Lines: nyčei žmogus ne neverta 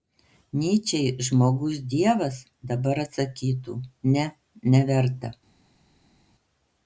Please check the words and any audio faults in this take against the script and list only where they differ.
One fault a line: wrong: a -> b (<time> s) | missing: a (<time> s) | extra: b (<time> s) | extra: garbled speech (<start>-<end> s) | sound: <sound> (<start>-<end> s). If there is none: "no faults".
extra: dievas dabar atsakytų (1.9 s)